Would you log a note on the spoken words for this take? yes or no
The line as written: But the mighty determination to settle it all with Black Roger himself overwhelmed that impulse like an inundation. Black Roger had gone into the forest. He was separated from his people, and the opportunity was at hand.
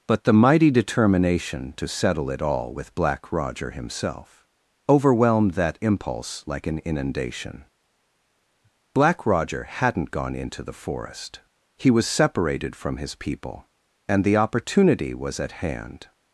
yes